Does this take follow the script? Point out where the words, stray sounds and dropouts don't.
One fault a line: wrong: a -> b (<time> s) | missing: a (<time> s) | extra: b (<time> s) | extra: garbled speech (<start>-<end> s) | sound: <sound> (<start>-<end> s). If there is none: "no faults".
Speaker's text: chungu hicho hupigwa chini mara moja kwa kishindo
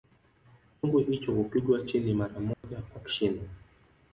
sound: dropout (2.5-2.6 s)